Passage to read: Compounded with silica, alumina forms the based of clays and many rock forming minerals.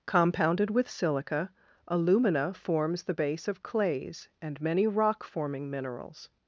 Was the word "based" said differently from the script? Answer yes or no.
yes